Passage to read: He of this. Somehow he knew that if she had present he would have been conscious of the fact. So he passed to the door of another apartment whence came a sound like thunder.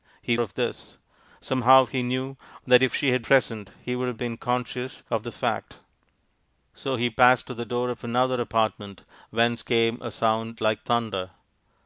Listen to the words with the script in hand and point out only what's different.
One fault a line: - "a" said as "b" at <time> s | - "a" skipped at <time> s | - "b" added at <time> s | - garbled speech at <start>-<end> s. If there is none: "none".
none